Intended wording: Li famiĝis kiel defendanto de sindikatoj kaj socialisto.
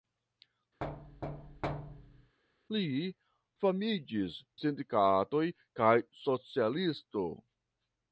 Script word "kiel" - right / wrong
wrong